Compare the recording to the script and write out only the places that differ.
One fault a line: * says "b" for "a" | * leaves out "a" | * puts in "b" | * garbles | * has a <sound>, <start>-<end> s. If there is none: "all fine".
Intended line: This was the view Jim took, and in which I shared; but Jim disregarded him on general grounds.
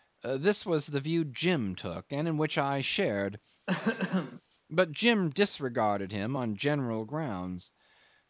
* has a throat clearing, 3.7-4.4 s